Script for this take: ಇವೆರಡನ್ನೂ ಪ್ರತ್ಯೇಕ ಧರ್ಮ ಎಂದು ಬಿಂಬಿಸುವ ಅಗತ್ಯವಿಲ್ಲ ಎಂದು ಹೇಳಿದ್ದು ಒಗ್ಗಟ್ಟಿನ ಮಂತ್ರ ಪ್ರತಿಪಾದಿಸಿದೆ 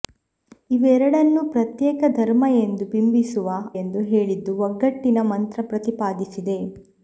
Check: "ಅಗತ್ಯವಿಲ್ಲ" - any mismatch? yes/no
yes